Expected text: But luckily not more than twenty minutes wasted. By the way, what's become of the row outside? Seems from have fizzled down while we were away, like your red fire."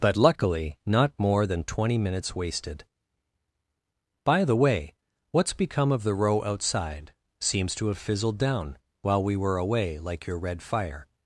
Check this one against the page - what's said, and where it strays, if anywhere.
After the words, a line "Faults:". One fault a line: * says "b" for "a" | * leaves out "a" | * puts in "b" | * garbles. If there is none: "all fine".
But luckily not more than twenty minutes wasted. By the way, what's become of the row outside? Seems to have fizzled down while we were away, like your red fire."
Faults:
* says "to" for "from"